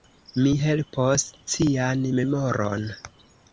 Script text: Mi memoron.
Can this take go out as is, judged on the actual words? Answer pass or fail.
fail